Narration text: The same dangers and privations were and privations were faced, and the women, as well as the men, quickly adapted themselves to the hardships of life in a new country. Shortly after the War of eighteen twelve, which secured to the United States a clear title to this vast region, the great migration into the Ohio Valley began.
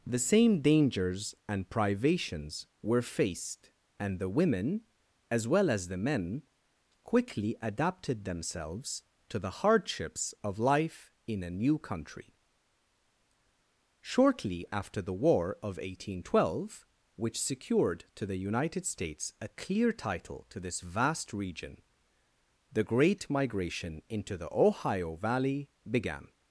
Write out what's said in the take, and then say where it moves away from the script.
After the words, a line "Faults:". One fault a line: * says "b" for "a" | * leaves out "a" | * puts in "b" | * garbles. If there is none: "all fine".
The same dangers and privations were faced, and the women, as well as the men, quickly adapted themselves to the hardships of life in a new country. Shortly after the War of eighteen twelve, which secured to the United States a clear title to this vast region, the great migration into the Ohio Valley began.
Faults:
* leaves out "and privations were"